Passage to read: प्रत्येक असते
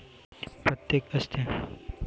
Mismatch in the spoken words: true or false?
false